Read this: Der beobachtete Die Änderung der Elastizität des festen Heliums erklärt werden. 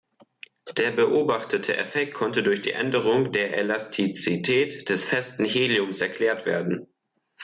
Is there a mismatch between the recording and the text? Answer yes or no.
yes